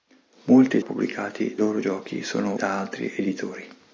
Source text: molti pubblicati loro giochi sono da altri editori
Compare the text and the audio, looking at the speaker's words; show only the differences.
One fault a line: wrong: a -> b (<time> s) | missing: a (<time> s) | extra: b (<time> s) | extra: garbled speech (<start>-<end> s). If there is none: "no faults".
no faults